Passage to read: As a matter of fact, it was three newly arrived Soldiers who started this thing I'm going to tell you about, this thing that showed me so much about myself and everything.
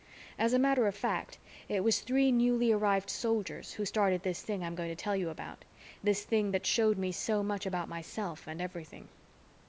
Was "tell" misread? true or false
false